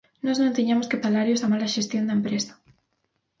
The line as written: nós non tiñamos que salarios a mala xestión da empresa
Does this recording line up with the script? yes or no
yes